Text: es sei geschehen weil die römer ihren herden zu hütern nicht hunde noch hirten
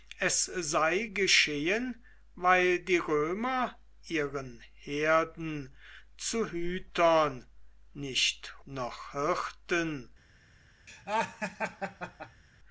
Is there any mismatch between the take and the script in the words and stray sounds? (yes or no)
yes